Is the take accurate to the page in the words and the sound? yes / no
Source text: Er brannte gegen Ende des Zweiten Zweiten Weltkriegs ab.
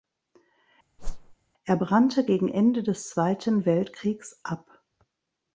no